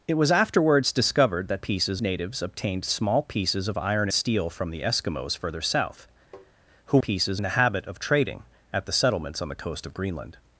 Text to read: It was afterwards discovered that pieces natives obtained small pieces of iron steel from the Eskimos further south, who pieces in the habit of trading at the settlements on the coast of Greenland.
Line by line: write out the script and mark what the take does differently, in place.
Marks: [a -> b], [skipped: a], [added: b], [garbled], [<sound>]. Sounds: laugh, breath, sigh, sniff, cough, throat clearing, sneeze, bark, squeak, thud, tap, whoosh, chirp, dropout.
It was afterwards discovered that pieces natives obtained small pieces of iron steel from the Eskimos further south, [tap] who pieces in the habit of trading at the settlements on the coast of Greenland.